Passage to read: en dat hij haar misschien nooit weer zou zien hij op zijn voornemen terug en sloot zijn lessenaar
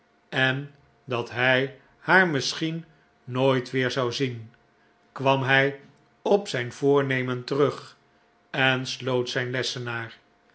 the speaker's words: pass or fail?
fail